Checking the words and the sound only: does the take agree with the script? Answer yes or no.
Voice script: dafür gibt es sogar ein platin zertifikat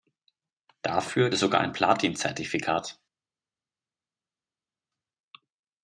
no